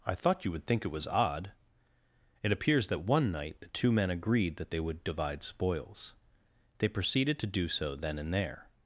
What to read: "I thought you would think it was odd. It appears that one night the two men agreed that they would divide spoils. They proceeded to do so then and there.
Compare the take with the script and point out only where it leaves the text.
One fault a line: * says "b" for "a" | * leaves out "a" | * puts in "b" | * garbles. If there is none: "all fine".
all fine